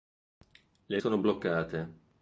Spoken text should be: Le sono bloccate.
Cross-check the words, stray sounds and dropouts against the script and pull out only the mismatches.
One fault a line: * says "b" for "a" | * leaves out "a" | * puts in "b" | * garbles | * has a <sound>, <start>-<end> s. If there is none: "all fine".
all fine